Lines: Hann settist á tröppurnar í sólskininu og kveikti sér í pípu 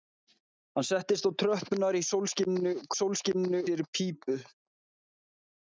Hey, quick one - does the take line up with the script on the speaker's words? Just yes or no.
no